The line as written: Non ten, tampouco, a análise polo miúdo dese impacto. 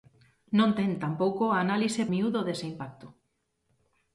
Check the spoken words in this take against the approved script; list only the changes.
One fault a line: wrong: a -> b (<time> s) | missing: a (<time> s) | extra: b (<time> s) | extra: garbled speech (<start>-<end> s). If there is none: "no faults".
missing: polo (2.0 s)